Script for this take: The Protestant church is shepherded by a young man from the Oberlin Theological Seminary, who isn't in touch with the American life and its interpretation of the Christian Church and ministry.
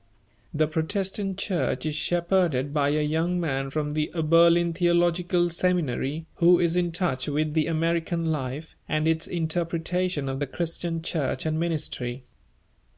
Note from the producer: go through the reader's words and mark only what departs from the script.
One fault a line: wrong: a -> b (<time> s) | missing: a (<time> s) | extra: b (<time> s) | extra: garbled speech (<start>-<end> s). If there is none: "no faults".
wrong: isn't -> is (6.6 s)